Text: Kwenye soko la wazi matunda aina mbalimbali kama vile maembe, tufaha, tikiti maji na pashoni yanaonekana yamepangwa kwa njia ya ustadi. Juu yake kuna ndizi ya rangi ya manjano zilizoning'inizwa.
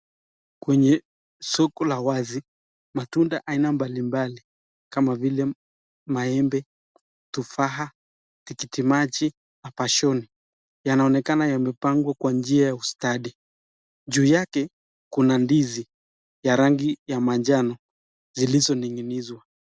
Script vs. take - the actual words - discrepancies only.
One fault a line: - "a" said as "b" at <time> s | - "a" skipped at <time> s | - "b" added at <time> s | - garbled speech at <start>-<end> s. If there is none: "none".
none